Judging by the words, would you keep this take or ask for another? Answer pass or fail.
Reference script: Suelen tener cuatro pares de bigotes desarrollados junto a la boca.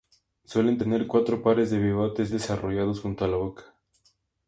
pass